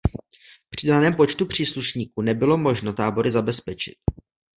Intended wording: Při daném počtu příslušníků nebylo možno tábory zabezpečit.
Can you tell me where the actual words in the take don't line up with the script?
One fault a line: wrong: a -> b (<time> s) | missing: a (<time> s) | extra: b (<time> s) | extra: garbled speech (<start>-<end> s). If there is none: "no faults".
no faults